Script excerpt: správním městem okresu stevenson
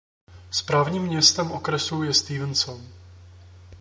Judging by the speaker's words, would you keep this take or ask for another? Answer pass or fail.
fail